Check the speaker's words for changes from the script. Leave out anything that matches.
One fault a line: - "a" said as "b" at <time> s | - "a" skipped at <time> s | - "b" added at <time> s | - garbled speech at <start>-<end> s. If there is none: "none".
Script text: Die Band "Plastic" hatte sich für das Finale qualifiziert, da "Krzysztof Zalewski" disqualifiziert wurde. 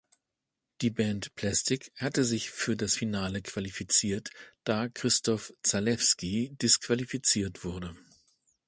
none